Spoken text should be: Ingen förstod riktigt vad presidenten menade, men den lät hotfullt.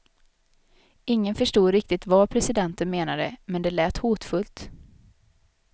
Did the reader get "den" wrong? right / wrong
wrong